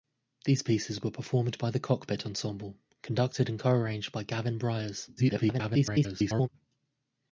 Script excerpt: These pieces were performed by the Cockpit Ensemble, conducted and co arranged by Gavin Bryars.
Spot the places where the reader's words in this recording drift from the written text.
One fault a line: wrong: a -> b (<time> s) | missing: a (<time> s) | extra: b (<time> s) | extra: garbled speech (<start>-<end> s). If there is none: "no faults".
extra: garbled speech (5.2-6.5 s)